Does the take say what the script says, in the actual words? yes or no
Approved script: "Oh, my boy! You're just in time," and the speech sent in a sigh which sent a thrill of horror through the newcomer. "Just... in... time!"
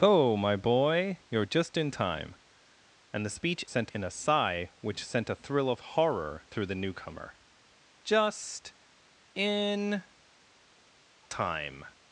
yes